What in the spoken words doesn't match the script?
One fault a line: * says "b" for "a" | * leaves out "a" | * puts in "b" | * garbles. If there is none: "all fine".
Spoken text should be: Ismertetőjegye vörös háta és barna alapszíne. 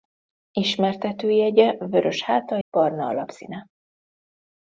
* leaves out "és"